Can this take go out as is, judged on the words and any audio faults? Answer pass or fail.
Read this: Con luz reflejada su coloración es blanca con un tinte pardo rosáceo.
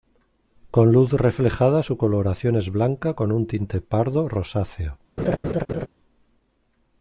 fail